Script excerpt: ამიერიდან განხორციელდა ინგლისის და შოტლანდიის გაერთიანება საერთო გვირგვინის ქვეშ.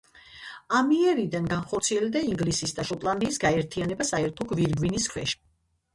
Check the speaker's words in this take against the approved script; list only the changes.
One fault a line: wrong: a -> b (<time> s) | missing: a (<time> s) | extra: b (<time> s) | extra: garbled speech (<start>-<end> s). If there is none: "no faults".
no faults